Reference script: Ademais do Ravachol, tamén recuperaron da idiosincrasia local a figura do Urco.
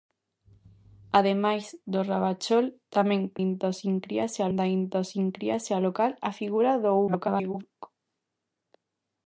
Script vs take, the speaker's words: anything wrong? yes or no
yes